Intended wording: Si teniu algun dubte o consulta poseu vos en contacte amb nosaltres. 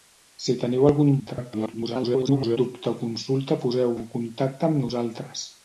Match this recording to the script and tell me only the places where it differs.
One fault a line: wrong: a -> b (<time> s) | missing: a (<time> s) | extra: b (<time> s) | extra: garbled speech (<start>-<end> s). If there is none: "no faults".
extra: garbled speech (1.2-2.6 s)
missing: vos (4.0 s)